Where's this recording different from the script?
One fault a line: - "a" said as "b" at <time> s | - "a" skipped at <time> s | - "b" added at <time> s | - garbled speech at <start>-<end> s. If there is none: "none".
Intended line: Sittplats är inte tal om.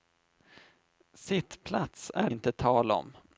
none